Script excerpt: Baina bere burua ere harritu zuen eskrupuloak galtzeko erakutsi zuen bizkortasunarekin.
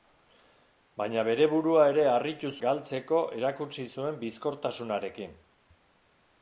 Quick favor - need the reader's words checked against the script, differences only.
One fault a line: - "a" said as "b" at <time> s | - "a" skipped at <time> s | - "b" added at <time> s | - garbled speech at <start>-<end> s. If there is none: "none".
- "zuen eskrupuloak" skipped at 2.5 s